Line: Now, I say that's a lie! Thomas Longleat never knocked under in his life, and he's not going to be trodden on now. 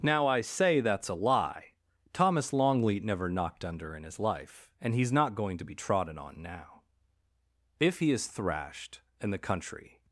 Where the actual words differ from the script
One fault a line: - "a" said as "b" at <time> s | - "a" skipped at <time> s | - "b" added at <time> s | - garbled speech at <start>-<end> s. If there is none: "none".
- "If he is thrashed and the country" added at 7.8 s